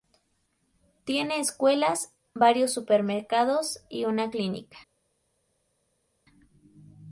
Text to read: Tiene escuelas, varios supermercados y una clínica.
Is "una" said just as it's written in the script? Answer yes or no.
yes